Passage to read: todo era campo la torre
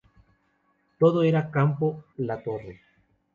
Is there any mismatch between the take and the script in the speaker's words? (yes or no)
no